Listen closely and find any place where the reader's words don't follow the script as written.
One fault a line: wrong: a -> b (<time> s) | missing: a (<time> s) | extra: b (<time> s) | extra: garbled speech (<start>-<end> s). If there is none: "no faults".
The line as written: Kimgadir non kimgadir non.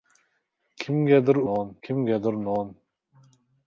no faults